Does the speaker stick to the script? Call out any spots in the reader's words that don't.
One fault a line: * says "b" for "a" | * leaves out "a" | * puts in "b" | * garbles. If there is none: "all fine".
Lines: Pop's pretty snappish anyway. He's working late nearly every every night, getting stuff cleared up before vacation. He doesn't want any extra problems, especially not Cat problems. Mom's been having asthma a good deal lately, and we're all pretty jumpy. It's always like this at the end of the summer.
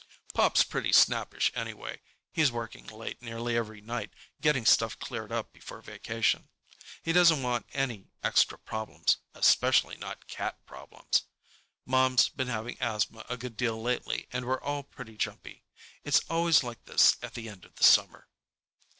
* leaves out "every"